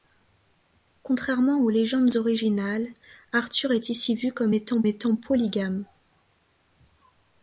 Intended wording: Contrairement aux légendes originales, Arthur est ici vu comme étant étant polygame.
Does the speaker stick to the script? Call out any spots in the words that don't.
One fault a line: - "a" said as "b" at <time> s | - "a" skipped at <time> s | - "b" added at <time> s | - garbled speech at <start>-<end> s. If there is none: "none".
none